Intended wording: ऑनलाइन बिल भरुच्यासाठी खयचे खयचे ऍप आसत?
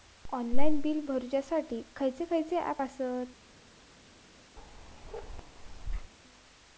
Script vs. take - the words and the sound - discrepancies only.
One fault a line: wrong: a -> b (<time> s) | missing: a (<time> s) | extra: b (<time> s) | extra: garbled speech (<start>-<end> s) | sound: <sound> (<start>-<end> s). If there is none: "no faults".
sound: bark (4.6-6.1 s)